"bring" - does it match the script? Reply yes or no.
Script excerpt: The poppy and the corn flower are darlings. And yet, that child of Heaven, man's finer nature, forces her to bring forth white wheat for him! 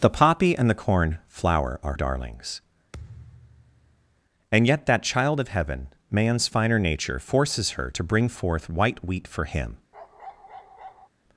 yes